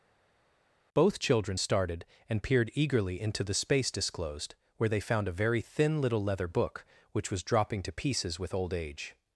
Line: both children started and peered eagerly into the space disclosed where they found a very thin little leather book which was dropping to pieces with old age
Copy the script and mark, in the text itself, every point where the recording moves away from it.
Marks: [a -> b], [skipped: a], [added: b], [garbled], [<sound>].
both children started and peered eagerly into the space disclosed where they found a very thin little leather book which was dropping to pieces with old age